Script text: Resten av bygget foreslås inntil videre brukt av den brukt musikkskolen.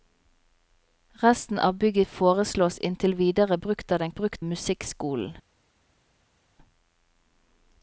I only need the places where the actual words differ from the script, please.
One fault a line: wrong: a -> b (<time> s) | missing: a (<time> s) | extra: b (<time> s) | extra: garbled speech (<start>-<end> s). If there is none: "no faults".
no faults